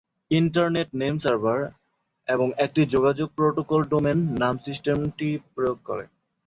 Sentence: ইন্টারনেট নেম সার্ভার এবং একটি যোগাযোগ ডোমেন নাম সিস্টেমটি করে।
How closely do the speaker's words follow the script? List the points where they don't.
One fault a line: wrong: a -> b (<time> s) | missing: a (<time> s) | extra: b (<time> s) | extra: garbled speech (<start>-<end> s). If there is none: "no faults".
extra: প্রোটোকল (3.4 s)
extra: প্রয়োগ (5.5 s)